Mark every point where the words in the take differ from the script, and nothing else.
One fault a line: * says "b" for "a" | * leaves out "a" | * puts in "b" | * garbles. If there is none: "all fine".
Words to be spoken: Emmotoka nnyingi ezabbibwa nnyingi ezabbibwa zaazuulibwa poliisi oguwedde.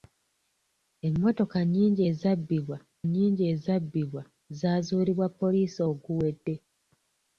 all fine